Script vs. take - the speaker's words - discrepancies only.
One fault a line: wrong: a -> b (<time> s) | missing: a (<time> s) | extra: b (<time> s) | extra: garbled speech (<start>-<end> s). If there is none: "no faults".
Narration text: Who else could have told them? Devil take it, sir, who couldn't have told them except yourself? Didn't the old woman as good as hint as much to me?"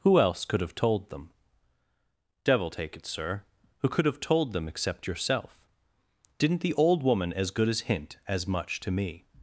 wrong: couldn't -> could (3.9 s)